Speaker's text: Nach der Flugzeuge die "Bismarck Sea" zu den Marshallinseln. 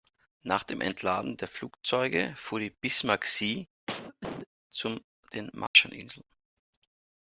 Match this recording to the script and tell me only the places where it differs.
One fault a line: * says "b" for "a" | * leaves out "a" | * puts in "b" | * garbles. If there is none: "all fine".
* puts in "dem Entladen"
* puts in "fuhr"